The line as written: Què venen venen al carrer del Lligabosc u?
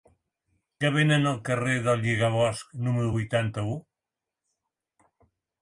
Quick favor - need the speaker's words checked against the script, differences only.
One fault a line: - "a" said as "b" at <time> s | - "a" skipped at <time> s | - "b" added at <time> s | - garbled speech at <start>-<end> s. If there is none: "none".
- "venen" skipped at 1.3 s
- "número vuitanta" added at 2.9 s